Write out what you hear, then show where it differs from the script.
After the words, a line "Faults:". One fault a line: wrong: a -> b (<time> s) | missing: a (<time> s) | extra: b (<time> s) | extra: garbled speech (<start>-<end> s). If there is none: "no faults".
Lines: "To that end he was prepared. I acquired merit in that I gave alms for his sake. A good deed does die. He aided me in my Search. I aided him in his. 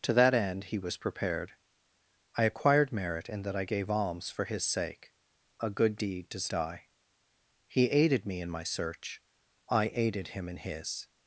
"To that end he was prepared. I acquired merit in that I gave alms for his sake. A good deed does die. He aided me in my Search. I aided him in his.
Faults:
no faults